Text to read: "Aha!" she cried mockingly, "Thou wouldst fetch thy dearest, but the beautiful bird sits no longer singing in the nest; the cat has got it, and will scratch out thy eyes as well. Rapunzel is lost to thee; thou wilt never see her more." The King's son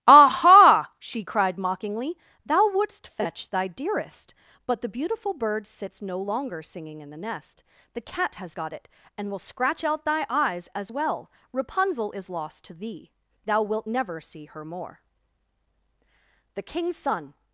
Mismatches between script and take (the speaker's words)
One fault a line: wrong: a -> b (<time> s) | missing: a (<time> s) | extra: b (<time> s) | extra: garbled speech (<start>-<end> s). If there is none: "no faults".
no faults